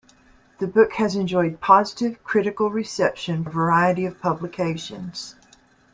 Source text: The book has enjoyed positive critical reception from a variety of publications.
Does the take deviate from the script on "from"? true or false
true